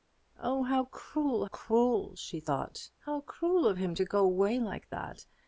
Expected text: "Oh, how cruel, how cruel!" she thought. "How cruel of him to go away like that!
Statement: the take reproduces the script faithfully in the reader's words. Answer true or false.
false